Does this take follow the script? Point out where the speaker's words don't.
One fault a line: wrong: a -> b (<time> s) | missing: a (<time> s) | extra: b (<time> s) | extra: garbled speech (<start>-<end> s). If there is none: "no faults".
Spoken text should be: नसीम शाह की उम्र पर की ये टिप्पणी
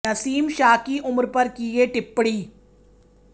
no faults